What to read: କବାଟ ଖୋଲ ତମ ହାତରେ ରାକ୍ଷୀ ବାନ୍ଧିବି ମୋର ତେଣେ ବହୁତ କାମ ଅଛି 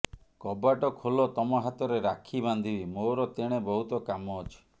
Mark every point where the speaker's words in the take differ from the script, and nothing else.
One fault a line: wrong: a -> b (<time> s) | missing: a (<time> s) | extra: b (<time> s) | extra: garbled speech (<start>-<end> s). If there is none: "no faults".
no faults